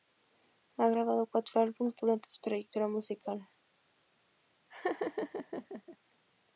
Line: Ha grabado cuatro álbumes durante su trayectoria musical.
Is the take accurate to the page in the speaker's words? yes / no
yes